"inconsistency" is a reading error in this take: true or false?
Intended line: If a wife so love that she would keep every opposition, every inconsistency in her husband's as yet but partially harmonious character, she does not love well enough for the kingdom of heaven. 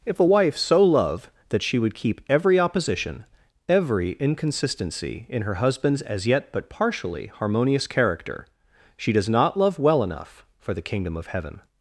false